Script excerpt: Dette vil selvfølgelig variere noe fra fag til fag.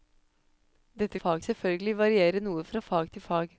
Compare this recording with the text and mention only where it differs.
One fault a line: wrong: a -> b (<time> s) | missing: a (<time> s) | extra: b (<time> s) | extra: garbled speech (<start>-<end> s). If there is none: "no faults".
wrong: vil -> fag (1.1 s)